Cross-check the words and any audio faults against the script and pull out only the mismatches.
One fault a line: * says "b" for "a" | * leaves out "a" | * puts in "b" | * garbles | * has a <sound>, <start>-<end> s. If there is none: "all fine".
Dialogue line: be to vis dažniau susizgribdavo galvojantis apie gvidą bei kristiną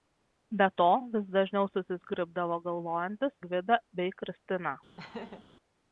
* leaves out "apie"
* has a laugh, 5.0-5.4 s